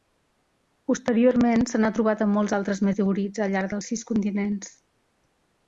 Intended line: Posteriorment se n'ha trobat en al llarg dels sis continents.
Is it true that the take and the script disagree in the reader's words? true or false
true